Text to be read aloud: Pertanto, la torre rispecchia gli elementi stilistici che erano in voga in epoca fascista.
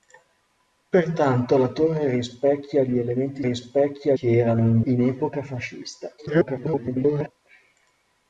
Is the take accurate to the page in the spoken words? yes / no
no